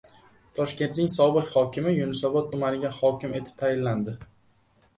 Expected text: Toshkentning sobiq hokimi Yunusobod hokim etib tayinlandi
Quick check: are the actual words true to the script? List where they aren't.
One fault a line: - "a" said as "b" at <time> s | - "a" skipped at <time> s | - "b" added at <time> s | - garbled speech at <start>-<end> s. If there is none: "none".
- "tumaniga" added at 2.6 s